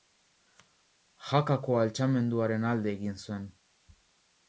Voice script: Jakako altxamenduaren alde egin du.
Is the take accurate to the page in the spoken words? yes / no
no